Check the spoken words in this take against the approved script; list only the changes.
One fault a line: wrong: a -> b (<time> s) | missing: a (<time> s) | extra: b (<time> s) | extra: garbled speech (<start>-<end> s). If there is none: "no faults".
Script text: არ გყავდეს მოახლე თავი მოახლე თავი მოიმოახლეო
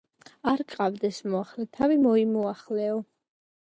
missing: მოახლე თავი (2.0 s)